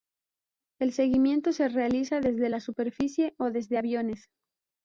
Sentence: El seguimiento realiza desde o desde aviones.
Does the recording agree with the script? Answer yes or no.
no